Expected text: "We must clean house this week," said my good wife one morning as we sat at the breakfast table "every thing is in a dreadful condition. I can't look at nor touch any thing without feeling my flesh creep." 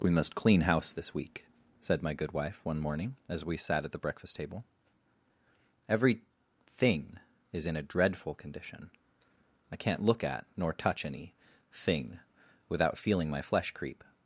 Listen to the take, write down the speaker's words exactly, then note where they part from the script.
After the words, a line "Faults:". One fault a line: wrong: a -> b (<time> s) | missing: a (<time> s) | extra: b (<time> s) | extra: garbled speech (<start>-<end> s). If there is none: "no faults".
"We must clean house this week," said my good wife one morning as we sat at the breakfast table "every thing is in a dreadful condition. I can't look at nor touch any thing without feeling my flesh creep."
Faults:
no faults